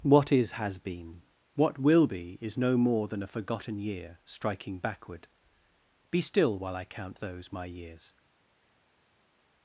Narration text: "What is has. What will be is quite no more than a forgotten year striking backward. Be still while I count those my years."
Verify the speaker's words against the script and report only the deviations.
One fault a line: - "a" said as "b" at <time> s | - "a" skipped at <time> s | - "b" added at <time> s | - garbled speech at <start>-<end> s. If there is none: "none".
- "been" added at 0.8 s
- "quite" skipped at 2.6 s